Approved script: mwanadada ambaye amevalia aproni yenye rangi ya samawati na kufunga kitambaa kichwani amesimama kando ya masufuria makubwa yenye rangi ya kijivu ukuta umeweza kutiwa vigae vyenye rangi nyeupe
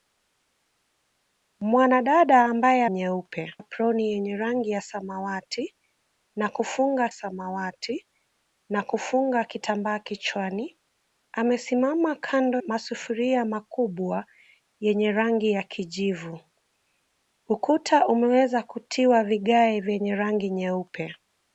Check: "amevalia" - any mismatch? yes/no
yes